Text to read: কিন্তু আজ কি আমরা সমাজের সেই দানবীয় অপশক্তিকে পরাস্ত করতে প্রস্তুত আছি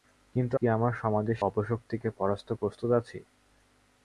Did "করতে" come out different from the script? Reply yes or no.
yes